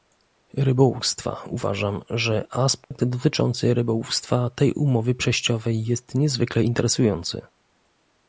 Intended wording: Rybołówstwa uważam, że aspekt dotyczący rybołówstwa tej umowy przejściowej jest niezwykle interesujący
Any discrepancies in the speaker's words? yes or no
no